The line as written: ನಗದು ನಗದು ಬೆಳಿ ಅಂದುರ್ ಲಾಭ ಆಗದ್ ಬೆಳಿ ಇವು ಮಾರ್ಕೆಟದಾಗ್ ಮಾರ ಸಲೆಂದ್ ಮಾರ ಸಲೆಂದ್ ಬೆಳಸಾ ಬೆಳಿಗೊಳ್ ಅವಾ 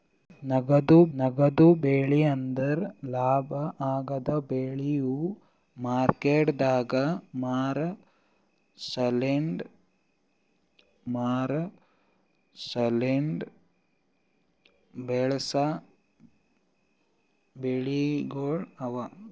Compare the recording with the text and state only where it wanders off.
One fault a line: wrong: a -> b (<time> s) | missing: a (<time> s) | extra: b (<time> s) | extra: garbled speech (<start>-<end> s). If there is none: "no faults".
no faults